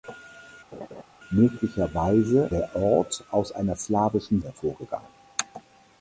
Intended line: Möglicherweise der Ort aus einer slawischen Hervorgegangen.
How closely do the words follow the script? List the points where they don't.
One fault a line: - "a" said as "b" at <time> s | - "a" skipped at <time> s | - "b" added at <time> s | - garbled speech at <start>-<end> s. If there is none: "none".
none